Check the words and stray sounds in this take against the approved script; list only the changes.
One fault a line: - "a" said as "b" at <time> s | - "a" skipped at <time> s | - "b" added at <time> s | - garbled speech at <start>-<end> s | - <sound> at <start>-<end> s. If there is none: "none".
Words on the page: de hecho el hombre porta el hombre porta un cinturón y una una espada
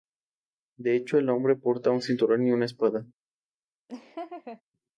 - "el hombre porta" skipped at 1.9 s
- "una" skipped at 2.6 s
- laugh at 3.9-4.6 s